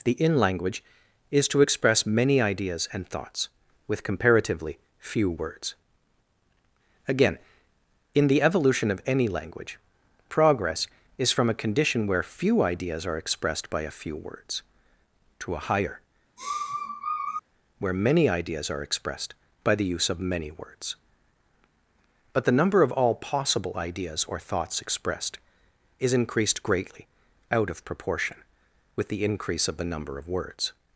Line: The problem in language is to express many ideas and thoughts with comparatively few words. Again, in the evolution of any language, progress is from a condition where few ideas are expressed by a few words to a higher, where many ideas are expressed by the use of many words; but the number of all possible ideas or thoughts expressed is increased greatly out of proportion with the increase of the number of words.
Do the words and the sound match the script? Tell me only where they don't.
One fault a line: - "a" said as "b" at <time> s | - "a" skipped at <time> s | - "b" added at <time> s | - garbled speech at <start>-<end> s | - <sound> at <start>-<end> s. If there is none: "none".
- "problem" skipped at 0.1 s
- sniff at 16.4-17.4 s